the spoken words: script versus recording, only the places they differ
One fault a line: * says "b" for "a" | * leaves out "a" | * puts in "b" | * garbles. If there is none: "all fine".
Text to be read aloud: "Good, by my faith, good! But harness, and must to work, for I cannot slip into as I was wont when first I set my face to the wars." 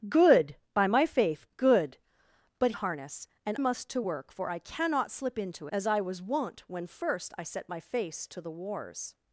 all fine